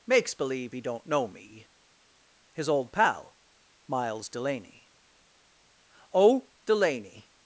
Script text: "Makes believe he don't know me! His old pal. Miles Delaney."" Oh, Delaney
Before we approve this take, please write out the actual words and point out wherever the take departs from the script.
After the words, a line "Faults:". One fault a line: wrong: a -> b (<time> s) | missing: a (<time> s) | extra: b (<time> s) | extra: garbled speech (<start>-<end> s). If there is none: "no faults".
"Makes believe he don't know me! His old pal. Miles Delaney."" Oh, Delaney
Faults:
no faults